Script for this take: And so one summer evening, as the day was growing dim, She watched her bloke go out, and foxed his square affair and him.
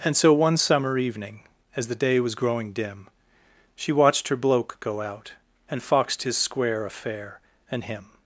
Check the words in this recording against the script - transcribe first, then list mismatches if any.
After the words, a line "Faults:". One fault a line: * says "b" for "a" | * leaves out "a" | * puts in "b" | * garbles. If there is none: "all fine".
And so one summer evening, as the day was growing dim, She watched her bloke go out, and foxed his square affair and him.
Faults:
all fine